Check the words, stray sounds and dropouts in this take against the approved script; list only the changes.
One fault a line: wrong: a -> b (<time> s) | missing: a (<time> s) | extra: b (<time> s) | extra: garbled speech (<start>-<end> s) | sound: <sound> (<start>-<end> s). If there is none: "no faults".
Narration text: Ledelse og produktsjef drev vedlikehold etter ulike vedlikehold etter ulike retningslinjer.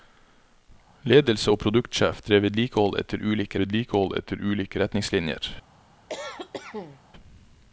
sound: cough (6.1-7.0 s)